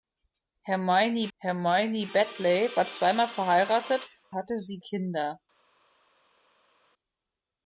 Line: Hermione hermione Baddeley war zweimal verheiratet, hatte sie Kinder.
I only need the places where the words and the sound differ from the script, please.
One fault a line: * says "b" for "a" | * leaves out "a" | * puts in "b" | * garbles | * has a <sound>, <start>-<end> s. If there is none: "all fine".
all fine